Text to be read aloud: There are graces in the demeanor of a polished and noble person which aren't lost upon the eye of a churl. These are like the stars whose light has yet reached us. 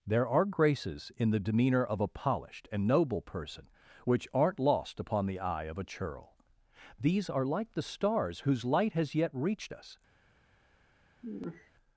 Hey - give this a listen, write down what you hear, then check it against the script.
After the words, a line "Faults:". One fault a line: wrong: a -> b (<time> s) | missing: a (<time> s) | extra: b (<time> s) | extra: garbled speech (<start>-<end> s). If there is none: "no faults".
There are graces in the demeanor of a polished and noble person which aren't lost upon the eye of a churl. These are like the stars whose light has yet reached us.
Faults:
no faults